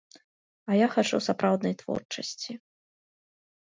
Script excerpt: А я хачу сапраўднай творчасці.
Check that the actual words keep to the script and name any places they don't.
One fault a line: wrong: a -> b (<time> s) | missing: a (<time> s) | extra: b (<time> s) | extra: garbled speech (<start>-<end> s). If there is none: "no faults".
no faults